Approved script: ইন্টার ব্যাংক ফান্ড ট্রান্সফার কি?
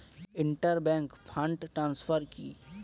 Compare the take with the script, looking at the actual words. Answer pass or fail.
pass